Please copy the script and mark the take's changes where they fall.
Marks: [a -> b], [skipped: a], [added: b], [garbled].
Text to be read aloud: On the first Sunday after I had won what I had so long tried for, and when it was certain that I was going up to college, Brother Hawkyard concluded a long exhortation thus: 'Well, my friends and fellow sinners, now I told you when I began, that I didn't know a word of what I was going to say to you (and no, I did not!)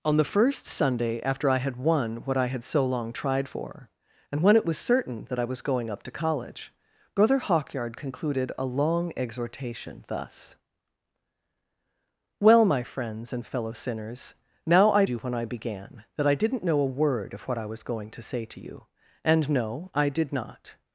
On the first Sunday after I had won what I had so long tried for, and when it was certain that I was going up to college, Brother Hawkyard concluded a long exhortation thus: 'Well, my friends and fellow sinners, now I [skipped: told] you when I began, that I didn't know a word of what I was going to say to you (and no, I did not!)